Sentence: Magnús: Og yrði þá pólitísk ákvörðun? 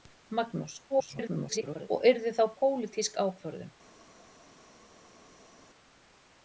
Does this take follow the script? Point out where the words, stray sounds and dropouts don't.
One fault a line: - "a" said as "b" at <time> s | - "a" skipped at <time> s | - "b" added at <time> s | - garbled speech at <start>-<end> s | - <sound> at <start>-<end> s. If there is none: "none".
- garbled speech at 0.9-1.9 s